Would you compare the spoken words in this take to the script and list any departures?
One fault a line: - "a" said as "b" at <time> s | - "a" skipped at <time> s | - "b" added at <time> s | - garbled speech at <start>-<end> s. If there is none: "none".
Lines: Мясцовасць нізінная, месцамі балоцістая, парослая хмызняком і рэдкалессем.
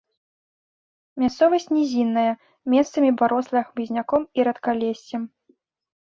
- "балоцістая" skipped at 3.1 s